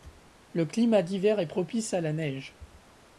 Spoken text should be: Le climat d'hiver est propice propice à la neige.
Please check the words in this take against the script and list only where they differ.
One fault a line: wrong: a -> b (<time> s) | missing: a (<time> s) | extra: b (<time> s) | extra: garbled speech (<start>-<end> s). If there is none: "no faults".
missing: propice (1.9 s)